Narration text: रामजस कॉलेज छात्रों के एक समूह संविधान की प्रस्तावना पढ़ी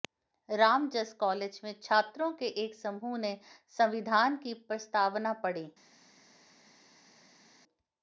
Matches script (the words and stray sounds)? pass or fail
fail